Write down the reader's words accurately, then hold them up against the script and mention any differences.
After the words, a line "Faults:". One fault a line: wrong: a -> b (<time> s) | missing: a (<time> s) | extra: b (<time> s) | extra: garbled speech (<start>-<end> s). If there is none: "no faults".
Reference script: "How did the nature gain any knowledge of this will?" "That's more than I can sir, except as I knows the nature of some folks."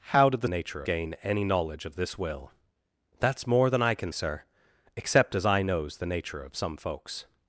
"How did the nature gain any knowledge of this will?" "That's more than I can sir, except as I knows the nature of some folks."
Faults:
no faults